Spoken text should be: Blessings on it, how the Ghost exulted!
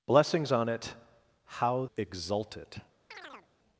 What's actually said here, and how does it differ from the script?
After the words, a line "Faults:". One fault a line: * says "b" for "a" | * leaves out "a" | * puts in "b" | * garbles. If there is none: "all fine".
Blessings on it, how exulted!
Faults:
* leaves out "the Ghost"